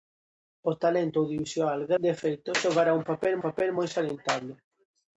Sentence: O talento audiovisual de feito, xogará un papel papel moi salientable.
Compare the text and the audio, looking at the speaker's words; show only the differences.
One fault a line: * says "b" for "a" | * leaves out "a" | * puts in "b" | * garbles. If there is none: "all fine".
all fine